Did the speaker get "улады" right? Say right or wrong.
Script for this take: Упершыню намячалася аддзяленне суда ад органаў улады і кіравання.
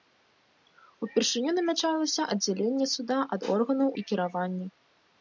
wrong